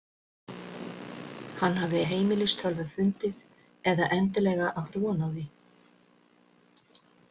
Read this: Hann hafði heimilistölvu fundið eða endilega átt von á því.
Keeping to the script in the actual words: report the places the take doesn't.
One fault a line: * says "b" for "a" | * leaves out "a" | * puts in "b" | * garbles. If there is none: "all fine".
all fine